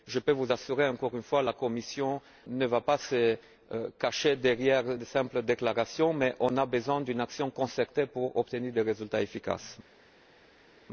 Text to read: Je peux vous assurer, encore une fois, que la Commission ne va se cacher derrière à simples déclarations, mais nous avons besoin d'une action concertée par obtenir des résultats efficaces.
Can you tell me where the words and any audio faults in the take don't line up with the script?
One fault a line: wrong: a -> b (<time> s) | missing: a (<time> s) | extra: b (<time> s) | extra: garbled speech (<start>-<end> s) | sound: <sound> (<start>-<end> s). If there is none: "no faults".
extra: pas (2.8 s)
wrong: à -> de (4.9 s)
wrong: par -> pour (8.0 s)